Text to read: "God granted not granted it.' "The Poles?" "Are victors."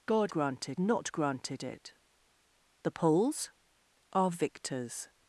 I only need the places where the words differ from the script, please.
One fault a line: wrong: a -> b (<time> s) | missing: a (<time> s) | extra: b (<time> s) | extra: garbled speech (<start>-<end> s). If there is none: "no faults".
no faults